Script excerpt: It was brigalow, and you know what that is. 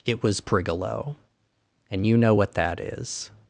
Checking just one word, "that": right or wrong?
right